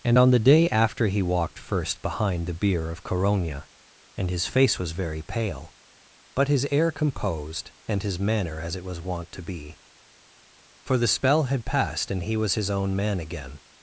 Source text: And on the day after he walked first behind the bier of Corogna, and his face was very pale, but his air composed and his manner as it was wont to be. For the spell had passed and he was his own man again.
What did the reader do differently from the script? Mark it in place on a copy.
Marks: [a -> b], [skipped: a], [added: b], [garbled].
And on the day after he walked first behind the bier of Corogna, and his face was very pale, but his air composed and his manner as it was wont to be. For the spell had passed and he was his own man again.